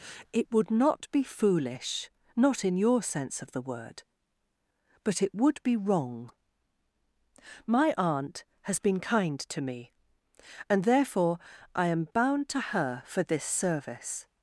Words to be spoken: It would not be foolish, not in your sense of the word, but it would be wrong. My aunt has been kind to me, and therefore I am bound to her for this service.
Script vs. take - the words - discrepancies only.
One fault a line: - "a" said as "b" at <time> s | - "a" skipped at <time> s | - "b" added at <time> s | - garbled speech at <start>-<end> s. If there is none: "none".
none